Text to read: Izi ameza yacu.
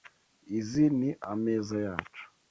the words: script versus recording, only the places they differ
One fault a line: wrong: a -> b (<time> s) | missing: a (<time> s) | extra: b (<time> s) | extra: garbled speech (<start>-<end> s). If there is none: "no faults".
extra: ni (1.0 s)